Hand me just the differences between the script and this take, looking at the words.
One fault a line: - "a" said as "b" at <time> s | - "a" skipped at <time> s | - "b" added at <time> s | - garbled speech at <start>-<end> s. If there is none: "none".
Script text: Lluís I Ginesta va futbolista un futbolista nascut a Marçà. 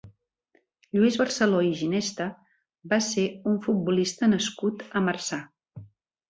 - "Barceló" added at 1.2 s
- "futbolista" said as "ser" at 3.1 s